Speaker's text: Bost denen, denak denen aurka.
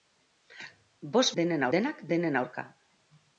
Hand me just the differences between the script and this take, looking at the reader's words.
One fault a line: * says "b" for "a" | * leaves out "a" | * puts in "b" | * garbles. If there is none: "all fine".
all fine